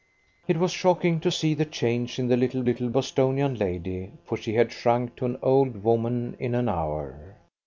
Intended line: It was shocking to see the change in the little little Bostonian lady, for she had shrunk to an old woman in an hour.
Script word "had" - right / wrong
right